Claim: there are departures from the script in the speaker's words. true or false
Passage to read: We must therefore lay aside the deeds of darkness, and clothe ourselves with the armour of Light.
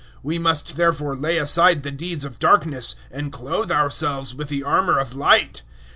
false